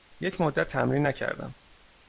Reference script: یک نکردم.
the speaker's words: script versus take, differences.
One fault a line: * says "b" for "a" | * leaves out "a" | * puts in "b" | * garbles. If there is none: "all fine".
* puts in "مدت تمرین"